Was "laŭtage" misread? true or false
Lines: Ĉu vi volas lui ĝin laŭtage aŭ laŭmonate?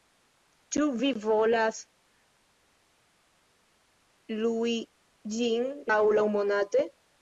true